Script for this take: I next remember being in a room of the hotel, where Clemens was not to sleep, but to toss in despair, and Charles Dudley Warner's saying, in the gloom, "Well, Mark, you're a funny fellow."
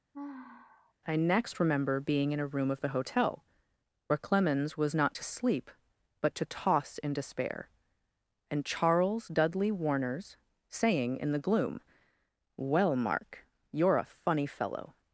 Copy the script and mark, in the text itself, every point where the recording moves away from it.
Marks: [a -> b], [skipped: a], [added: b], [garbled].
I next remember being in a room of the hotel, where Clemens was not to sleep, but to toss in despair, and Charles Dudley Warner's saying, in the gloom, "Well, Mark, you're a funny fellow."